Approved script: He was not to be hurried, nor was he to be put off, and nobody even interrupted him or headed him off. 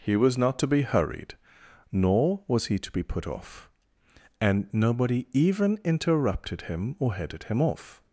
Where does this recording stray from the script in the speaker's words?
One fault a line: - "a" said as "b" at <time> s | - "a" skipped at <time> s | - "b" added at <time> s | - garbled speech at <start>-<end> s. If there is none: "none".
none